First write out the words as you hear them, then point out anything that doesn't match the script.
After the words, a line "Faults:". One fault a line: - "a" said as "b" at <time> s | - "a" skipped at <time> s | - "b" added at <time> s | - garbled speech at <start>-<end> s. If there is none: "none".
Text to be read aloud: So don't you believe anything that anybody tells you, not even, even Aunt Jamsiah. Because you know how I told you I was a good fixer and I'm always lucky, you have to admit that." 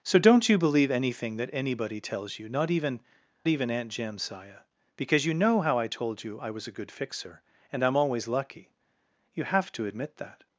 So don't you believe anything that anybody tells you, not even, even Aunt Jamsiah. Because you know how I told you I was a good fixer and I'm always lucky, you have to admit that."
Faults:
none